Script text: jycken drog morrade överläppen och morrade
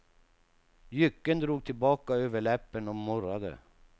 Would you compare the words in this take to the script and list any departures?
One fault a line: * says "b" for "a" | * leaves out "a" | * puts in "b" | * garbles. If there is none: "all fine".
* says "tillbaka" for "morrade"